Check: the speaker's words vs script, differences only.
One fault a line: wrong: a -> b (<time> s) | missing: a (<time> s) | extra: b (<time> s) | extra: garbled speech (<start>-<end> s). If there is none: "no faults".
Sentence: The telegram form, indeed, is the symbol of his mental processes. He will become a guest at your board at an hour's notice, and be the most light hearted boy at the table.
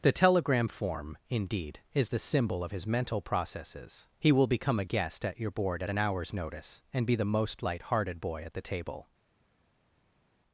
no faults